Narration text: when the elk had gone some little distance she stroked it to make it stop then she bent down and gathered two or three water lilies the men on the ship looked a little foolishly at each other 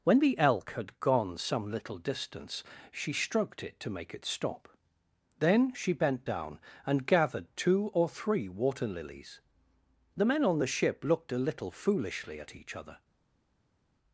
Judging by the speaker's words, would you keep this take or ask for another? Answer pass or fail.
pass